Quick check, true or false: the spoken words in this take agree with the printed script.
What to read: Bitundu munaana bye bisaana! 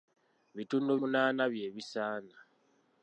true